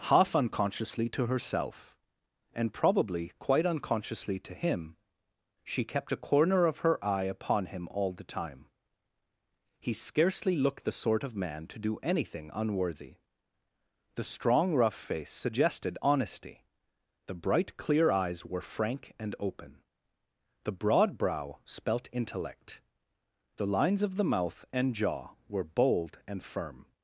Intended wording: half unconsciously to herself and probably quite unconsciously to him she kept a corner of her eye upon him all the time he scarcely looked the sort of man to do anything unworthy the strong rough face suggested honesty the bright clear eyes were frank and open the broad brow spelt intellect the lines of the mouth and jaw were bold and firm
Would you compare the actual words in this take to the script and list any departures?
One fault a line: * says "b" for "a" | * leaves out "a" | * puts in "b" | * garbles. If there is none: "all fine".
all fine